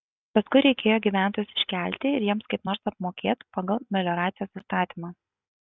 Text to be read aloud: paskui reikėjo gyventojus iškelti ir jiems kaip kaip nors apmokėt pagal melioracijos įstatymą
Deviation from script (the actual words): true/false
true